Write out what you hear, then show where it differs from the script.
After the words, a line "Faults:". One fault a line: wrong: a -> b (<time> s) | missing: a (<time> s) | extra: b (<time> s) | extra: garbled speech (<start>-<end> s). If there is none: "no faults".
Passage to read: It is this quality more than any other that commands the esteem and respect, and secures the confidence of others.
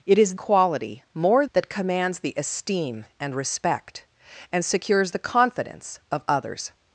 It is quality more that commands the esteem and respect, and secures the confidence of others.
Faults:
missing: this (0.3 s)
missing: than any other (1.5 s)